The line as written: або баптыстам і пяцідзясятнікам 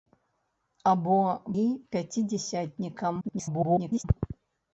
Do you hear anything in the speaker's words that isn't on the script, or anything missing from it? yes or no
yes